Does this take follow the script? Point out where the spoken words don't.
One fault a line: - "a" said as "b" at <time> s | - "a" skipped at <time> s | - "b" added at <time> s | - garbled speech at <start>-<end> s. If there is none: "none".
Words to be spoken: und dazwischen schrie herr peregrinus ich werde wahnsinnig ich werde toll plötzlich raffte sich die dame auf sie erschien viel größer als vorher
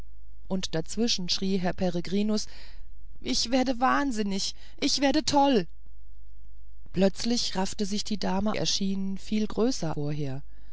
- "auf sie" skipped at 8.6 s
- "als" skipped at 9.9 s